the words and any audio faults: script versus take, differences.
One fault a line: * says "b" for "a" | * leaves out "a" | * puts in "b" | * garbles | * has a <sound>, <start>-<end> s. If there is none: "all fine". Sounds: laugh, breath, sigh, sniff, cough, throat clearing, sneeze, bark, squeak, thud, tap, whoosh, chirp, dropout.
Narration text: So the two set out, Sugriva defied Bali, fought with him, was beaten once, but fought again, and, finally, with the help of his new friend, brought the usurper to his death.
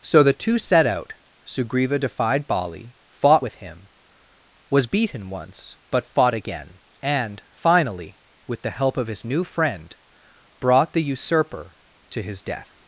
all fine